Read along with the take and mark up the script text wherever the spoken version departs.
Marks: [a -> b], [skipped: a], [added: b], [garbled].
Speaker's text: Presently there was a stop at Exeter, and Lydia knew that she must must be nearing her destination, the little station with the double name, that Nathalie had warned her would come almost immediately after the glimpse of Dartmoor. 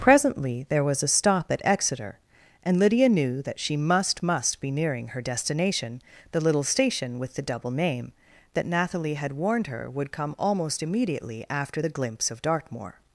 Presently there was a stop at Exeter, and Lydia knew that she must must be nearing her destination, the little station with the double name, that Nathalie had warned her would come almost immediately after the glimpse of Dartmoor.